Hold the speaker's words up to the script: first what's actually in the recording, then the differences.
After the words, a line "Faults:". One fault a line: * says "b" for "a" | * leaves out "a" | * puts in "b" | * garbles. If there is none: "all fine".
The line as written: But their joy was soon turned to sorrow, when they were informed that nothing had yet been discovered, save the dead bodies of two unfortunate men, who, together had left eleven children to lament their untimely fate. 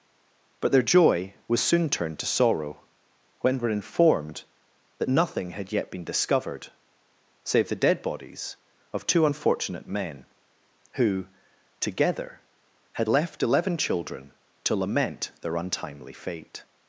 But their joy was soon turned to sorrow, when were informed that nothing had yet been discovered, save the dead bodies of two unfortunate men, who, together had left eleven children to lament their untimely fate.
Faults:
* leaves out "they"